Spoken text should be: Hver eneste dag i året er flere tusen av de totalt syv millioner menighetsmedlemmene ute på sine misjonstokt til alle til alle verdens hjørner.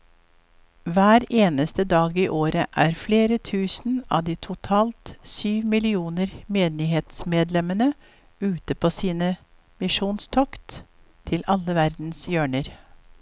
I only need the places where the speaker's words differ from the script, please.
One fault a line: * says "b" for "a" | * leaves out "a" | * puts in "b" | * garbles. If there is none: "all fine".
* leaves out "til alle"